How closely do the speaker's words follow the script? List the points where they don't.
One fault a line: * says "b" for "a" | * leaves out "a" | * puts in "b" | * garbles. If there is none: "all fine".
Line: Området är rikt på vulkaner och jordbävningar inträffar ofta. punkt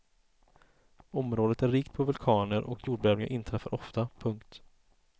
all fine